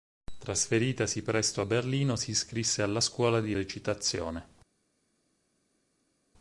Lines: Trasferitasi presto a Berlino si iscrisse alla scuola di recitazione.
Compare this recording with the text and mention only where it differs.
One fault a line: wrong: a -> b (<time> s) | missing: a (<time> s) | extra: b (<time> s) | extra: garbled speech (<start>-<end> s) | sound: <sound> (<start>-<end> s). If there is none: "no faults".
no faults